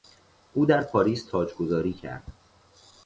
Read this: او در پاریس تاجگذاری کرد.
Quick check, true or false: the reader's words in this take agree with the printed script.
true